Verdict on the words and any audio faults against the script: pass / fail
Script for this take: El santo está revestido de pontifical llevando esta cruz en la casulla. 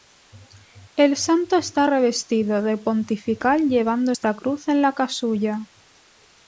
pass